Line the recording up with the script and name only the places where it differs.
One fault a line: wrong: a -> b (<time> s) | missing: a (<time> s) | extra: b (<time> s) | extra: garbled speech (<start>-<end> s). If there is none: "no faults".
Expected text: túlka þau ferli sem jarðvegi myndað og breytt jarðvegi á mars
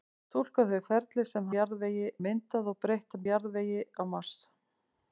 no faults